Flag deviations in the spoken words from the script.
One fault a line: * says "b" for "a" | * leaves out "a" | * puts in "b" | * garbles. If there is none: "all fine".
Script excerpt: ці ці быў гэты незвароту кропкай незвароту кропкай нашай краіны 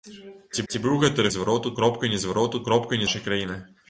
all fine